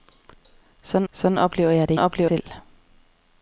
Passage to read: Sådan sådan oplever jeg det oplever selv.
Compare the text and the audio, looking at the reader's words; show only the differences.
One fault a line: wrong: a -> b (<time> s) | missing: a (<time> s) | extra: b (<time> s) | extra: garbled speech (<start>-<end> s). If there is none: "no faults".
no faults